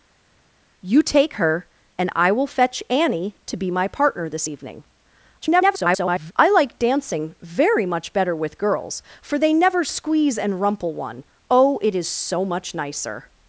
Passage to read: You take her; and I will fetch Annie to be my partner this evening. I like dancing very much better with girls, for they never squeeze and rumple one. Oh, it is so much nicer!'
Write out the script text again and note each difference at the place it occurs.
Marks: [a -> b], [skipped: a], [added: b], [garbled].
You take her; and I will fetch Annie to be my partner this evening. [garbled] I like dancing very much better with girls, for they never squeeze and rumple one. Oh, it is so much nicer!'